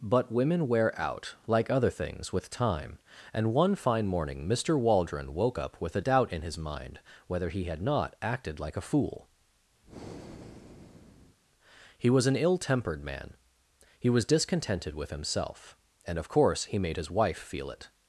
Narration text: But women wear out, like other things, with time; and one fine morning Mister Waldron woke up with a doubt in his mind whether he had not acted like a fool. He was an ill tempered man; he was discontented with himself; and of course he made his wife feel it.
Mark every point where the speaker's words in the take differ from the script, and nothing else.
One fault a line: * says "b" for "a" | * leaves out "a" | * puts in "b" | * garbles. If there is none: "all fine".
all fine